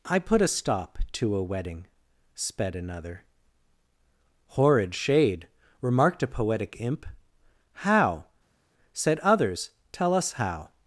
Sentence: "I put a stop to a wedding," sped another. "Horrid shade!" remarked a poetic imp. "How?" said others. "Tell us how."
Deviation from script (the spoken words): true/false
false